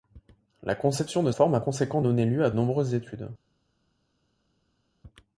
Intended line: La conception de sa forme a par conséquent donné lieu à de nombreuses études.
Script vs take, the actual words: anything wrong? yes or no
yes